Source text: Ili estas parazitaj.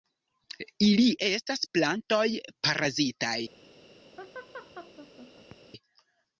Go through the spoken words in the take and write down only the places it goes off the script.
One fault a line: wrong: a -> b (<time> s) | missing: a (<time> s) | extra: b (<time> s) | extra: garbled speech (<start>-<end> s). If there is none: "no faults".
extra: plantoj (1.8 s)